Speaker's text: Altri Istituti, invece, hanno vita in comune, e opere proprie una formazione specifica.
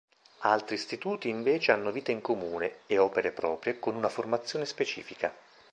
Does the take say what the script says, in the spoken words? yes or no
no